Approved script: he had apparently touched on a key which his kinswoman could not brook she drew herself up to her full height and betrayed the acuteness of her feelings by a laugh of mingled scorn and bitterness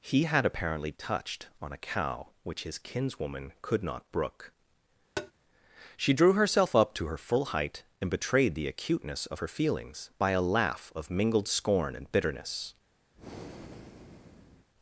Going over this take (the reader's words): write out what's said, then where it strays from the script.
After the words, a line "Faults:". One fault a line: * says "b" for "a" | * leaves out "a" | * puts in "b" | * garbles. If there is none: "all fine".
he had apparently touched on a cow which his kinswoman could not brook she drew herself up to her full height and betrayed the acuteness of her feelings by a laugh of mingled scorn and bitterness
Faults:
* says "cow" for "key"